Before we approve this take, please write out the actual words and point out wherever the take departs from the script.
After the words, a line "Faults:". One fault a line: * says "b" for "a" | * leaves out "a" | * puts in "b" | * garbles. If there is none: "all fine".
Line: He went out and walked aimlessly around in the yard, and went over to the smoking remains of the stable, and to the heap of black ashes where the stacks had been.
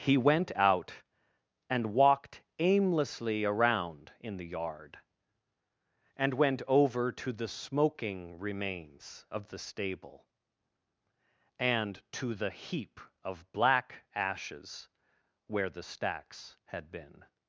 He went out and walked aimlessly around in the yard, and went over to the smoking remains of the stable, and to the heap of black ashes where the stacks had been.
Faults:
all fine